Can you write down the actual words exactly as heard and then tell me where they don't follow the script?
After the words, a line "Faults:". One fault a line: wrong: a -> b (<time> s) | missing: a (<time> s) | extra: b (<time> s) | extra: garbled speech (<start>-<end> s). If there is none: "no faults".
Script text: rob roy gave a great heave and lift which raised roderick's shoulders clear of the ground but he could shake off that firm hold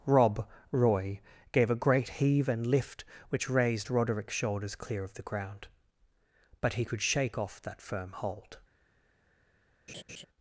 rob roy gave a great heave and lift which raised roderick's shoulders clear of the ground but he could shake off that firm hold
Faults:
no faults